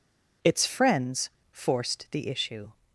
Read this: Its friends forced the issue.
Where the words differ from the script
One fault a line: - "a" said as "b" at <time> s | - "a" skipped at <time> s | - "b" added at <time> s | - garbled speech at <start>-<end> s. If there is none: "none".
none